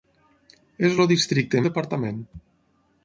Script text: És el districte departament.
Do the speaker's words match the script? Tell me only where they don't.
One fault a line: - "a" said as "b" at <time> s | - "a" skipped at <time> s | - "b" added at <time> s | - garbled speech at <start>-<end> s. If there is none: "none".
none